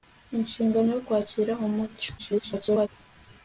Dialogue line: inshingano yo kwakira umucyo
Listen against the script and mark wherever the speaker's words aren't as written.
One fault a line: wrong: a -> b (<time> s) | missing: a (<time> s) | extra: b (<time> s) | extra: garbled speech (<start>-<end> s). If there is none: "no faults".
extra: garbled speech (2.2-2.9 s)